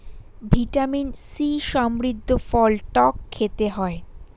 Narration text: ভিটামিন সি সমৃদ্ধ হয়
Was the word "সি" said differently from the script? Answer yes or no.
no